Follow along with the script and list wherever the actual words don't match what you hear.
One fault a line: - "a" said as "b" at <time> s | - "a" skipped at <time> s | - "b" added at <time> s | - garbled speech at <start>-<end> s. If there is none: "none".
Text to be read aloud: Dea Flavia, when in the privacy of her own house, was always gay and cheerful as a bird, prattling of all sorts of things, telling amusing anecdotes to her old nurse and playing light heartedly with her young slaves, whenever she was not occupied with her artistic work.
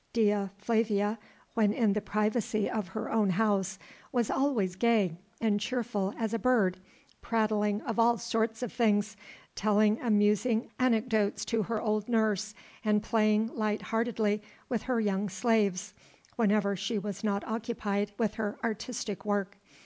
none